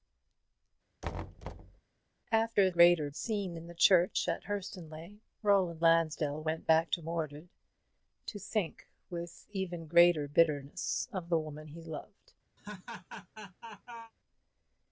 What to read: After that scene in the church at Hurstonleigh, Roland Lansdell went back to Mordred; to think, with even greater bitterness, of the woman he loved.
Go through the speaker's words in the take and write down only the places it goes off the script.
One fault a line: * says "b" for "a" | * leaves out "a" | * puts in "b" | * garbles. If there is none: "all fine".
* says "greater" for "that"